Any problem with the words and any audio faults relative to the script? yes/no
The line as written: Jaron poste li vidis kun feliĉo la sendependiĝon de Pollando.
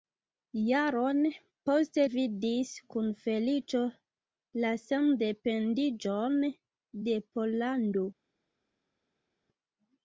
yes